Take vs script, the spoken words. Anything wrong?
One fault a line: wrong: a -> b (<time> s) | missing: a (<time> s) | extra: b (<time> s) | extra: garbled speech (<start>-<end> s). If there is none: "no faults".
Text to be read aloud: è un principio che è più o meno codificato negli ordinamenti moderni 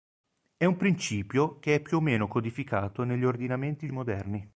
no faults